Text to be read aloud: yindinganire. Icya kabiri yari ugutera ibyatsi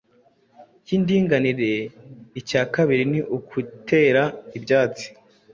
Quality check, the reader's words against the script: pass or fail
fail